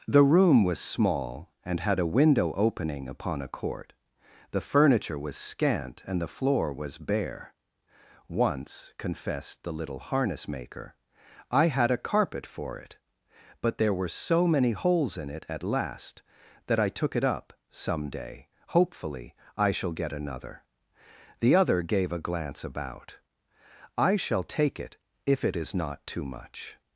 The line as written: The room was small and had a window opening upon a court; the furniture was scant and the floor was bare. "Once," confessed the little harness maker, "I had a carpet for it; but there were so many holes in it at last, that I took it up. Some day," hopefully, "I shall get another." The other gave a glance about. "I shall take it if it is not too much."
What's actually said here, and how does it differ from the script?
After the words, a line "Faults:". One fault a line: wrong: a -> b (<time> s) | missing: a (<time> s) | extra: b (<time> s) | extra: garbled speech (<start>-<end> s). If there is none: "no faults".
The room was small and had a window opening upon a court; the furniture was scant and the floor was bare. "Once," confessed the little harness maker, "I had a carpet for it; but there were so many holes in it at last, that I took it up. Some day," hopefully, "I shall get another." The other gave a glance about. "I shall take it if it is not too much."
Faults:
no faults